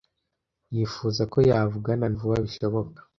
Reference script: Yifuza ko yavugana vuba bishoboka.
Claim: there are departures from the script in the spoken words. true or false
false